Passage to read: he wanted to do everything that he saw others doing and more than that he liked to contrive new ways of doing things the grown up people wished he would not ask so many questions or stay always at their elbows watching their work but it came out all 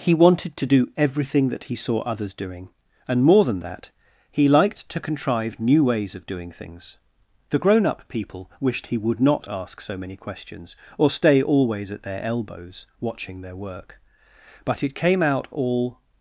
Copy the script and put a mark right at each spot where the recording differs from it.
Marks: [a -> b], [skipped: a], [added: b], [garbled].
he wanted to do everything that he saw others doing and more than that he liked to contrive new ways of doing things the grown up people wished he would not ask so many questions or stay always at their elbows watching their work but it came out all